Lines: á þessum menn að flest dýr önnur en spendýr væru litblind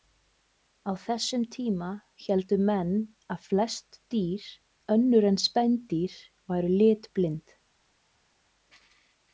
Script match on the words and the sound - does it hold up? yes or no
no